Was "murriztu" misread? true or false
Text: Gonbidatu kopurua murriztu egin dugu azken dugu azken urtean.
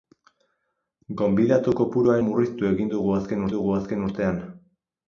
false